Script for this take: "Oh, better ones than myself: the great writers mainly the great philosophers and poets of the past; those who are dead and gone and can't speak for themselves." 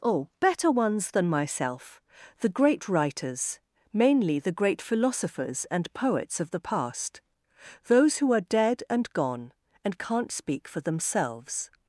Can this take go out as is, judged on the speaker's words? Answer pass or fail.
pass